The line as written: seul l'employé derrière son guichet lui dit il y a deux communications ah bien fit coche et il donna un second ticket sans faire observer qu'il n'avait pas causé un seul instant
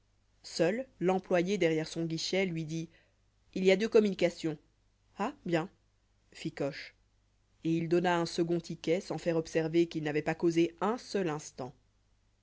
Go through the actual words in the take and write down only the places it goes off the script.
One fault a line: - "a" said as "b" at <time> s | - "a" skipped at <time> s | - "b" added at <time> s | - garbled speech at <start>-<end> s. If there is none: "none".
none